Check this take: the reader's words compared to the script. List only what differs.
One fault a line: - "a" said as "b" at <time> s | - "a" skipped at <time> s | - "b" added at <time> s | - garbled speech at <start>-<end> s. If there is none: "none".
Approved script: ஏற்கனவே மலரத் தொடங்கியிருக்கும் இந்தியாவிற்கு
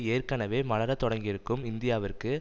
none